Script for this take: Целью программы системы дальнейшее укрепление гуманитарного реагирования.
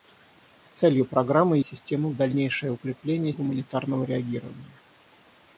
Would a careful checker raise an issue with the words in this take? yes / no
no